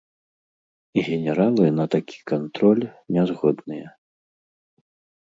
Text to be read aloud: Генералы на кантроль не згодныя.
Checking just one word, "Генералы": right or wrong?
right